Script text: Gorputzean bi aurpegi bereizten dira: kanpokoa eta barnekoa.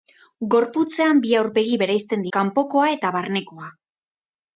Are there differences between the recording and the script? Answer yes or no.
yes